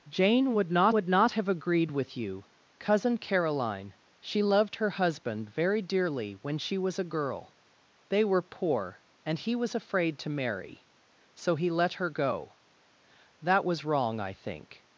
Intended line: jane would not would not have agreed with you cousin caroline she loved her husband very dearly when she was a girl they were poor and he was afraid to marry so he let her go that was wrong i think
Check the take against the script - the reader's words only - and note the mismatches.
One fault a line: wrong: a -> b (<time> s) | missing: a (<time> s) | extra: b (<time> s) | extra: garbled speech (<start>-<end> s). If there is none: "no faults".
no faults